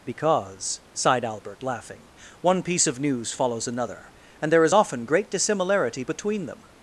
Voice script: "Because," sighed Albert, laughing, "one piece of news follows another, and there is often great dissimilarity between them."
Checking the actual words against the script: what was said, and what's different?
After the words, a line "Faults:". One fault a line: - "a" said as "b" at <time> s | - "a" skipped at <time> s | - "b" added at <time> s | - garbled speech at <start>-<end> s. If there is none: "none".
"Because," sighed Albert, laughing, "one piece of news follows another, and there is often great dissimilarity between them."
Faults:
none